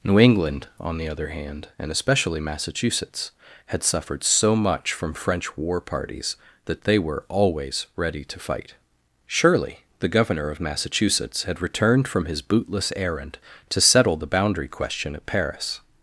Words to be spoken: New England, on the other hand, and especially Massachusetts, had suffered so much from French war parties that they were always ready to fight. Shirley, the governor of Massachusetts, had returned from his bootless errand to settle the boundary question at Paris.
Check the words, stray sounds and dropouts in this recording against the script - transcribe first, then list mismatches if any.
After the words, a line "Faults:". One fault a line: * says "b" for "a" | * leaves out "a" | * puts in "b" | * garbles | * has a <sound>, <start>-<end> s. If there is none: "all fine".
New England, on the other hand, and especially Massachusetts, had suffered so much from French war parties that they were always ready to fight. Shirley, the governor of Massachusetts, had returned from his bootless errand to settle the boundary question at Paris.
Faults:
all fine